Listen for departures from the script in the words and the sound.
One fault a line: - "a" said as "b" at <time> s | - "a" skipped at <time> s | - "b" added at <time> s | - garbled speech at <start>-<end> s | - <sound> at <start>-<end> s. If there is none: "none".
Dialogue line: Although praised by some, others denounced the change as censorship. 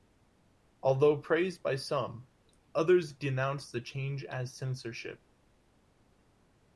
none